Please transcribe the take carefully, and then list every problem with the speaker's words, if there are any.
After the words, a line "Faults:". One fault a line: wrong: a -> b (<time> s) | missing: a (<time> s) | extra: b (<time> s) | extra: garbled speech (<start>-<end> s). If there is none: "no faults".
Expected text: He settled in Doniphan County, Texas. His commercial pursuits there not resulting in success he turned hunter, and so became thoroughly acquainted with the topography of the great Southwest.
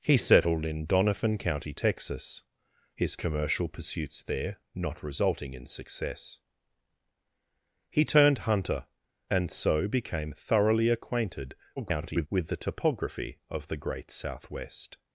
He settled in Doniphan County, Texas. His commercial pursuits there not resulting in success he turned hunter, and so became thoroughly acquainted [garbled] with the topography of the great Southwest.
Faults:
extra: garbled speech (11.8-12.3 s)